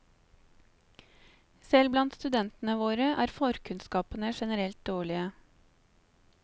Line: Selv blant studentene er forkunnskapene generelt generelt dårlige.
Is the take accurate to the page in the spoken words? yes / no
no